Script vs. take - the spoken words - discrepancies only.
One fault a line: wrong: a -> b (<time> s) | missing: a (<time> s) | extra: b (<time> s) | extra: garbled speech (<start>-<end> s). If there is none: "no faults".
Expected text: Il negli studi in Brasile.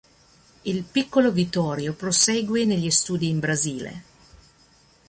extra: piccolo Vittorio prosegue (0.8 s)